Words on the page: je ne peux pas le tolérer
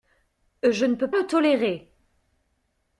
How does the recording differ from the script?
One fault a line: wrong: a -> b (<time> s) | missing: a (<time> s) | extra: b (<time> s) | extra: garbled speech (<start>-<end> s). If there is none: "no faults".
missing: pas (1.1 s)